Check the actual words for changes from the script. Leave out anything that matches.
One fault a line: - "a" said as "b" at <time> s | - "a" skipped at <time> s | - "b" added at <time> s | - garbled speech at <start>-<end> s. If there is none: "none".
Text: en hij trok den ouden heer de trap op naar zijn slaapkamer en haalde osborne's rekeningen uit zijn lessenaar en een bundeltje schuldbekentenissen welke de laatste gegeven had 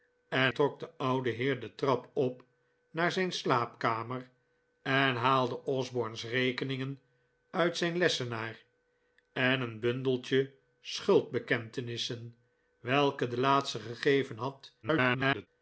- "hij" skipped at 0.5 s
- garbled speech at 14.8-15.5 s